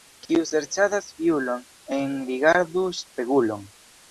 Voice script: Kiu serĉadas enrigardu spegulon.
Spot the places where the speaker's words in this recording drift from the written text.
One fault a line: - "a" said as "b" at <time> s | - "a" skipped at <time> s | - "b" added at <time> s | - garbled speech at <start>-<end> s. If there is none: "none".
- "fiulon" added at 1.2 s